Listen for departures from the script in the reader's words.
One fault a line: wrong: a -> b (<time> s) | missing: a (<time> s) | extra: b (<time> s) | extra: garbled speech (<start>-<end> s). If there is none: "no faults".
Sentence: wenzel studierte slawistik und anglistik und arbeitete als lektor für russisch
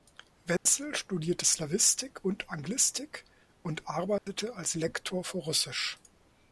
no faults